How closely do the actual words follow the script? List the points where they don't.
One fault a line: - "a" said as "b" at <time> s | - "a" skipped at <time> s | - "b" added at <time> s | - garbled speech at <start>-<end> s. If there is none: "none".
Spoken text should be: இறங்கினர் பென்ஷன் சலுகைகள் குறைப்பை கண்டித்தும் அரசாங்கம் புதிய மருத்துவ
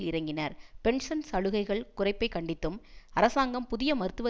none